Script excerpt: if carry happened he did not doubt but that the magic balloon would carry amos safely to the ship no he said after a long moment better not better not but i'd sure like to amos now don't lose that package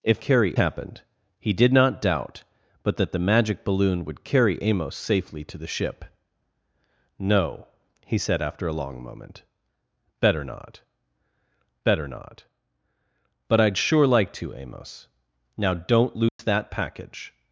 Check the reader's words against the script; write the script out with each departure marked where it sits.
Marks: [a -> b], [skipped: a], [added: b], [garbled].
if carry happened he did not doubt but that the magic balloon would carry amos safely to the ship no he said after a long moment better not better not but i'd sure like to amos now don't lose that package